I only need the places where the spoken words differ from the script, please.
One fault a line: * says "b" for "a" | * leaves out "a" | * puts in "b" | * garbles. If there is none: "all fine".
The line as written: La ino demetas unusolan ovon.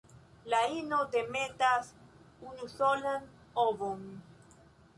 all fine